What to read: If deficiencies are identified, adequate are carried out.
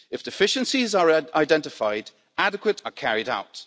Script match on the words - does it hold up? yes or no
yes